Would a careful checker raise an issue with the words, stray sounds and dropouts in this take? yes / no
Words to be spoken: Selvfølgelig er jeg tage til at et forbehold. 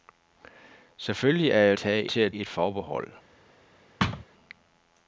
yes